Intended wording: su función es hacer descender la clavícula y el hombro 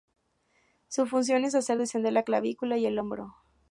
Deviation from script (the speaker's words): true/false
false